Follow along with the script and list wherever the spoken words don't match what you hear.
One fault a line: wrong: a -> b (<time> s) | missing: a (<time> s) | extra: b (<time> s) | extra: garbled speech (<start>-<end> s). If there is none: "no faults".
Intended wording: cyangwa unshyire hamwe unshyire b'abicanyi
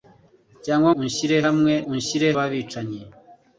no faults